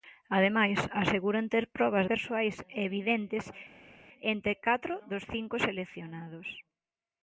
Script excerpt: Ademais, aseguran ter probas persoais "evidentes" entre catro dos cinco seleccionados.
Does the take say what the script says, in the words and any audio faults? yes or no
yes